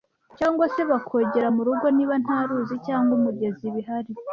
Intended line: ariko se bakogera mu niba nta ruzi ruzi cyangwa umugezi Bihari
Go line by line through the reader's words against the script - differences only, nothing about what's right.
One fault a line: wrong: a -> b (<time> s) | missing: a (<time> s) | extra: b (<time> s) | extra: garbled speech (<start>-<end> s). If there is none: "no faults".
wrong: ariko -> cyangwa (0.4 s)
extra: rugo (1.7 s)
missing: ruzi (2.8 s)